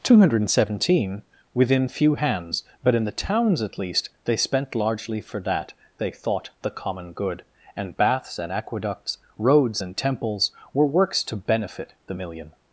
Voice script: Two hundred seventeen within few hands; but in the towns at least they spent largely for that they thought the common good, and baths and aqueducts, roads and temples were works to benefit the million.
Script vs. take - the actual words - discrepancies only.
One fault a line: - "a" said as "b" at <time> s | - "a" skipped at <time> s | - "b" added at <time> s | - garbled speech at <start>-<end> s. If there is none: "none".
none